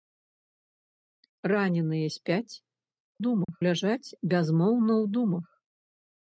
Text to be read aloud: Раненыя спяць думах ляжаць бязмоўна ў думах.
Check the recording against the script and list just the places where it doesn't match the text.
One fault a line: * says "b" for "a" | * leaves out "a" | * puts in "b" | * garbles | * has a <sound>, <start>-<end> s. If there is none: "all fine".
* has a dropout, 3.4-3.5 s